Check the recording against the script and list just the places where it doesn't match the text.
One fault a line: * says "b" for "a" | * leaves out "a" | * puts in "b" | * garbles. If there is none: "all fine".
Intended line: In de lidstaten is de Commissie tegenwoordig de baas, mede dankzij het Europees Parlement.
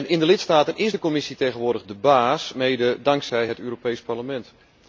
all fine